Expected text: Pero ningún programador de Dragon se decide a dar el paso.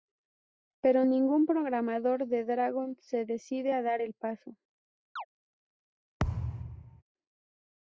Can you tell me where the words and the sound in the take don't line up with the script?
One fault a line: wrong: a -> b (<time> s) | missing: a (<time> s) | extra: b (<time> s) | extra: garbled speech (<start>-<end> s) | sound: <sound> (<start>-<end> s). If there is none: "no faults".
sound: chirp (5.2-5.3 s)
sound: thud (6.2-7.0 s)